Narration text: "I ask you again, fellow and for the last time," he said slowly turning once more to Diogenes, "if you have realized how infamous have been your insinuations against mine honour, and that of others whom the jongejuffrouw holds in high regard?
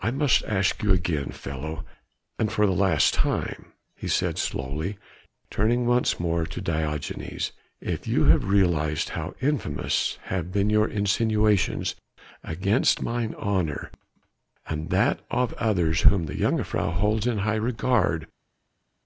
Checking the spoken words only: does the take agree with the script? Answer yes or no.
no